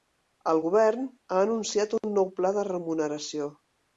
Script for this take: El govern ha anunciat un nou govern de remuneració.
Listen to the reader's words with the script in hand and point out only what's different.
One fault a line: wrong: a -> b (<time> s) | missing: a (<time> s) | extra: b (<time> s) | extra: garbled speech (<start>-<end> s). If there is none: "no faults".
wrong: govern -> pla (2.4 s)